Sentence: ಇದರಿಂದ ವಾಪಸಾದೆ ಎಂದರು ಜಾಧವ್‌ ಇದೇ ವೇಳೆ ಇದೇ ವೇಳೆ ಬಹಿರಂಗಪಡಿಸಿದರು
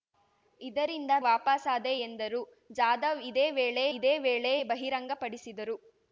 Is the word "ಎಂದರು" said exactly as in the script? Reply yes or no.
yes